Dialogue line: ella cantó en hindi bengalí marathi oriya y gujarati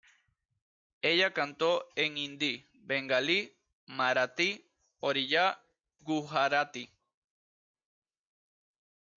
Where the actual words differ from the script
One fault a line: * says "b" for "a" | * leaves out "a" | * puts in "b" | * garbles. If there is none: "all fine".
* leaves out "y"